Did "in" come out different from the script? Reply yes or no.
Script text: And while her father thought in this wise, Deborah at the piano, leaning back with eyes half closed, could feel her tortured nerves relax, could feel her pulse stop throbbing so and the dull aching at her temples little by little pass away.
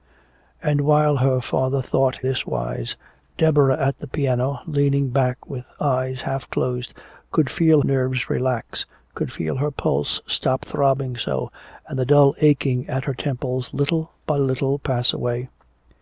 yes